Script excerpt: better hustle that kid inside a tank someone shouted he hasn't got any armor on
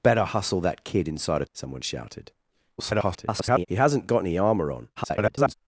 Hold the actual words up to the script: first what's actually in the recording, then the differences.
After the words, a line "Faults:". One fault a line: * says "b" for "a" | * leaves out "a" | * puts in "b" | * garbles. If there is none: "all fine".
better hustle that kid inside a someone shouted [garbled] he hasn't got any armor on [garbled]
Faults:
* leaves out "tank"
* garbles
* garbles